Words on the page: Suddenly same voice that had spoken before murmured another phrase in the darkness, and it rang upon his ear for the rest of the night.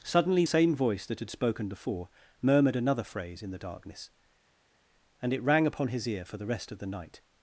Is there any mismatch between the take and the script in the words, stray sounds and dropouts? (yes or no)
no